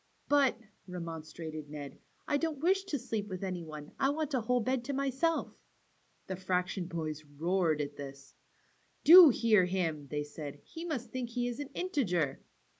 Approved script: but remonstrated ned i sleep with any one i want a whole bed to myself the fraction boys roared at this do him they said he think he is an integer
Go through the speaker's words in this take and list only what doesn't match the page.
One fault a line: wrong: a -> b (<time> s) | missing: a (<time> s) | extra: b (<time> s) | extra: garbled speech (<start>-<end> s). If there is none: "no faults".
extra: don't wish to (2.4 s)
extra: hear (9.3 s)
extra: must (10.8 s)